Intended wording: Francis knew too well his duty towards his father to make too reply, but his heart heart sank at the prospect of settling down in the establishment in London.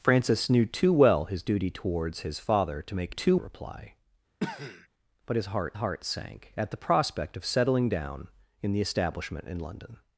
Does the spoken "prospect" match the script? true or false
true